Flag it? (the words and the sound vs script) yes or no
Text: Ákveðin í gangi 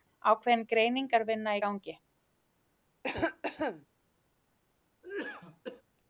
yes